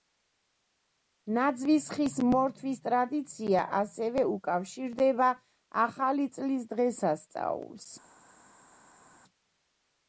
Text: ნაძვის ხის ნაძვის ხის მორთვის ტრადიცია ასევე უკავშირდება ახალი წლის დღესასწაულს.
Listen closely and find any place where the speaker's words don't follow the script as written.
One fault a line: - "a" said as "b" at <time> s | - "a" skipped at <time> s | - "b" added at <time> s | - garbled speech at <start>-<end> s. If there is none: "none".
- "ნაძვის ხის" skipped at 2.1 s